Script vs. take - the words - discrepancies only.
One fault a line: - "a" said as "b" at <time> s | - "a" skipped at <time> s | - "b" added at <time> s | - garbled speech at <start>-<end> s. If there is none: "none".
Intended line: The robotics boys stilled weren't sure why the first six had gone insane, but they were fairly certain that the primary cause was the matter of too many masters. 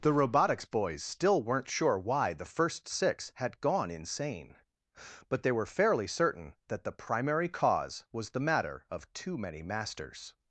- "stilled" said as "still" at 1.0 s